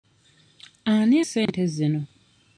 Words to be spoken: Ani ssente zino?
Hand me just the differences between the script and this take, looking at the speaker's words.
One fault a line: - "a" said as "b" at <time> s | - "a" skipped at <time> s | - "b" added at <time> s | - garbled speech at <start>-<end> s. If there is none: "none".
none